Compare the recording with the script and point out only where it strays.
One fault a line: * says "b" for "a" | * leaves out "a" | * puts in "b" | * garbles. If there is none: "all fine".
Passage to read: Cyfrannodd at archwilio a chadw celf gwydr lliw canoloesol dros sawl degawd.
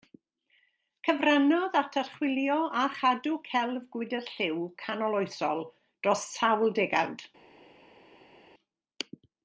all fine